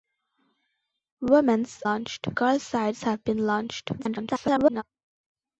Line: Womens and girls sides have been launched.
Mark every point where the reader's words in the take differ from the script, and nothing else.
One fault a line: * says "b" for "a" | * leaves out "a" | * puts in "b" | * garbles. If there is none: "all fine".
* says "launched" for "and"
* garbles